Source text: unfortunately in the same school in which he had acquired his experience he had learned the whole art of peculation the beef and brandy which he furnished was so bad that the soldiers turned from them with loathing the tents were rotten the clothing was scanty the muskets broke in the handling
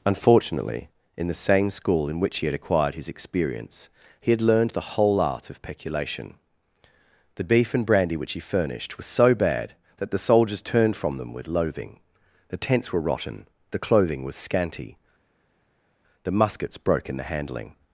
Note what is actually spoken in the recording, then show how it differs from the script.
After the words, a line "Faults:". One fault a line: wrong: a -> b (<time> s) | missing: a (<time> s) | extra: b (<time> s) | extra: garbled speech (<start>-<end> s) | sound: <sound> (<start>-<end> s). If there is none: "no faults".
unfortunately in the same school in which he had acquired his experience he had learned the whole art of peculation the beef and brandy which he furnished was so bad that the soldiers turned from them with loathing the tents were rotten the clothing was scanty the muskets broke in the handling
Faults:
no faults